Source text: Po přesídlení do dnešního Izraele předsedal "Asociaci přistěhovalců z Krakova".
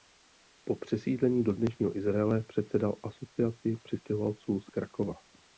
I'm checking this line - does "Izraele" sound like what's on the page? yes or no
yes